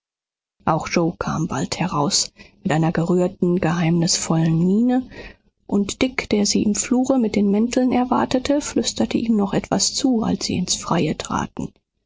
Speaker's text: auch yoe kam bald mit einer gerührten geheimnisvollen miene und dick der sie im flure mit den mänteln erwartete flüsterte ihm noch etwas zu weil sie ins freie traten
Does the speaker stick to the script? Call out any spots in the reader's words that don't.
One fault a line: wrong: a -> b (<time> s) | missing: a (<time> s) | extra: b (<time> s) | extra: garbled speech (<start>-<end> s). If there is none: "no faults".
extra: heraus (1.8 s)
wrong: weil -> als (10.2 s)